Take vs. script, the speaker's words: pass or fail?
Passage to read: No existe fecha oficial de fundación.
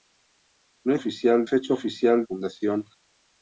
fail